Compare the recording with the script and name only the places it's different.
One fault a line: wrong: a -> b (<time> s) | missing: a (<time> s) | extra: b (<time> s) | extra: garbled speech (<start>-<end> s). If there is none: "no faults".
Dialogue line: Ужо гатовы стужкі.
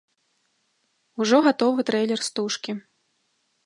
extra: трэйлер (1.9 s)